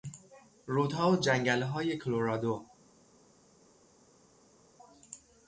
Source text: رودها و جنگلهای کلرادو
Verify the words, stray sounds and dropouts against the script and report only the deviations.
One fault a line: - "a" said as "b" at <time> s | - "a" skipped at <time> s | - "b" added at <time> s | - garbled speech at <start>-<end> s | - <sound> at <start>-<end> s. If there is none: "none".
none